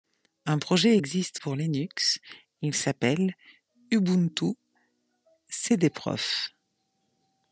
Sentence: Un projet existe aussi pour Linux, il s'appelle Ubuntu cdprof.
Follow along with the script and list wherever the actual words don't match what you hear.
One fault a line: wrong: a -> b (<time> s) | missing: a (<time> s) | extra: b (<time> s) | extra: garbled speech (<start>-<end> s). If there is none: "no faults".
missing: aussi (1.4 s)